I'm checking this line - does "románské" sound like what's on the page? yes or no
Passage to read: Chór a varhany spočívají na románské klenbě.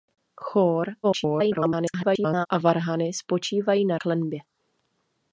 no